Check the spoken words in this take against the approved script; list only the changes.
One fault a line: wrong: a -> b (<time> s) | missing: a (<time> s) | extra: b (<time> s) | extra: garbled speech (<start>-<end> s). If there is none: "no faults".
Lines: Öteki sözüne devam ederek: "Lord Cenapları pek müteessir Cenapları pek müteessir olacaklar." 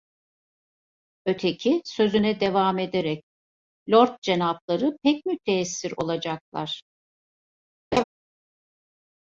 missing: Cenapları pek müteessir (5.9 s)